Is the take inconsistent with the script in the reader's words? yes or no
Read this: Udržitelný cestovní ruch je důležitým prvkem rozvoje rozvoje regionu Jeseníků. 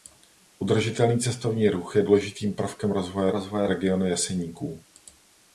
no